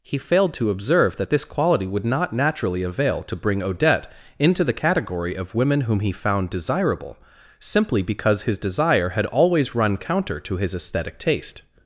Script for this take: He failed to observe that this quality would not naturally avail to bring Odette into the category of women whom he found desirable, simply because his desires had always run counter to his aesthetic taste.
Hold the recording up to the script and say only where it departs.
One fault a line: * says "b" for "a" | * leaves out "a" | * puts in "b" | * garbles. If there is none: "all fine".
* says "desire" for "desires"